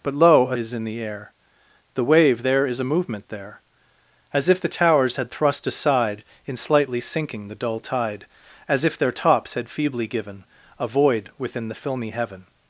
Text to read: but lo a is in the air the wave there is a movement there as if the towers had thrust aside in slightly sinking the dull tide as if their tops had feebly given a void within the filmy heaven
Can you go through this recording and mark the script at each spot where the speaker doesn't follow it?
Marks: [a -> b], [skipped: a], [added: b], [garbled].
but lo a is in the air the wave there is a movement there as if the towers had thrust aside in slightly sinking the dull tide as if their tops had feebly given a void within the filmy heaven